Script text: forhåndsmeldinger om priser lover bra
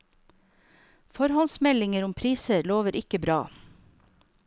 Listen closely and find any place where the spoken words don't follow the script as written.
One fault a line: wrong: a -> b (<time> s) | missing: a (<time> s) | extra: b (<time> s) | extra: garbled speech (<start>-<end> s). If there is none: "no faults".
extra: ikke (3.0 s)